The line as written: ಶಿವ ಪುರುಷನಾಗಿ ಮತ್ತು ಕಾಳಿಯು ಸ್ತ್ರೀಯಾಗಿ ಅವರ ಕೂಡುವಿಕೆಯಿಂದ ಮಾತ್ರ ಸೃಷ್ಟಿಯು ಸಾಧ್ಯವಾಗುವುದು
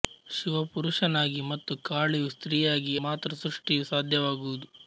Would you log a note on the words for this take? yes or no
yes